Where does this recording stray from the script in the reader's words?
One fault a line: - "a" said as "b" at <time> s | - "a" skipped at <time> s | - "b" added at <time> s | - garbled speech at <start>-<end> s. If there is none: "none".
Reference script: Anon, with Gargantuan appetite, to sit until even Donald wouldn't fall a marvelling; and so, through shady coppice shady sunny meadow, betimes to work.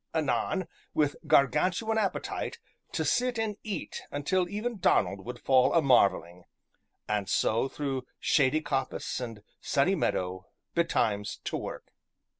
- "and eat" added at 3.4 s
- "wouldn't" said as "would" at 5.2 s
- "shady" said as "and" at 9.2 s